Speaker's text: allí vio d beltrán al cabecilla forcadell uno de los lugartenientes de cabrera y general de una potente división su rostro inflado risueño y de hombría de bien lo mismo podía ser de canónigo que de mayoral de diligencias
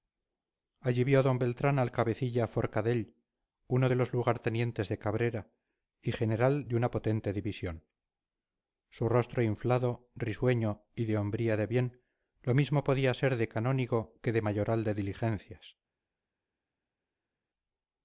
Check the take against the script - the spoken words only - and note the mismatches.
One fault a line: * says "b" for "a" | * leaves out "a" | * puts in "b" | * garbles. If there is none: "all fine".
all fine